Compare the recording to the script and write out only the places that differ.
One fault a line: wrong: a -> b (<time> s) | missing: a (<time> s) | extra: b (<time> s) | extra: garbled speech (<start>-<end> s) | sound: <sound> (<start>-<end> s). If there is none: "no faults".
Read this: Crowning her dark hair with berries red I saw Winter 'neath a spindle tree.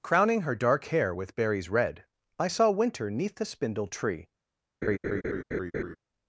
wrong: a -> the (3.4 s)
sound: laugh (4.8-6.0 s)